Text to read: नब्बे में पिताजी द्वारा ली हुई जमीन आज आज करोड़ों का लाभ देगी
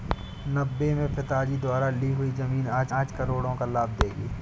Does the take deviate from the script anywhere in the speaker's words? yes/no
no